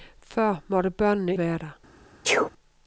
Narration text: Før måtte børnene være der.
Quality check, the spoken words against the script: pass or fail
pass